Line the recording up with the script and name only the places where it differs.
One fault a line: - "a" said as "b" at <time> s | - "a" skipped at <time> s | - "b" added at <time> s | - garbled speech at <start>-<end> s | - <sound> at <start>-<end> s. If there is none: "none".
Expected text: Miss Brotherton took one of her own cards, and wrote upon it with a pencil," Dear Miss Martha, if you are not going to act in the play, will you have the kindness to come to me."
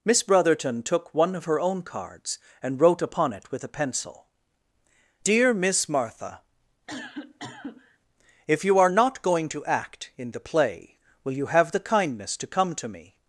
- cough at 6.9-8.0 s